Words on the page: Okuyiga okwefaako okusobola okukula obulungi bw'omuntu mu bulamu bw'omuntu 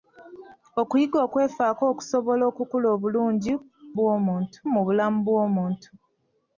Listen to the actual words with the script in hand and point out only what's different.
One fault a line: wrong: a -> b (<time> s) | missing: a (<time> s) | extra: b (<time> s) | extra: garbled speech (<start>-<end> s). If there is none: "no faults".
no faults